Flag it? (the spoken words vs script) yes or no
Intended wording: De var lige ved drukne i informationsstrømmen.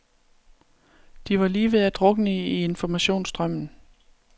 yes